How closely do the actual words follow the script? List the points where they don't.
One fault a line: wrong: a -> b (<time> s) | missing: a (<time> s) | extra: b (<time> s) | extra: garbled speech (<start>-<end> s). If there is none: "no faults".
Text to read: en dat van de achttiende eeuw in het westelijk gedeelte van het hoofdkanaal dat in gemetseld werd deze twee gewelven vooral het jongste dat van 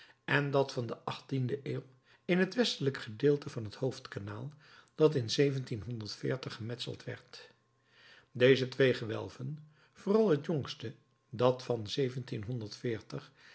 no faults